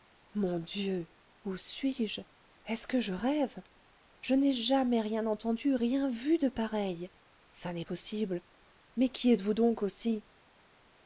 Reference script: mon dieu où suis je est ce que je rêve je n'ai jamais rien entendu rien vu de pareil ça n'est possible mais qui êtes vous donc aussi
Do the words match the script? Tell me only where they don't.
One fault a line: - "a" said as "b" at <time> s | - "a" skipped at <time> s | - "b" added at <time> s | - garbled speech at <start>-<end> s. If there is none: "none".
none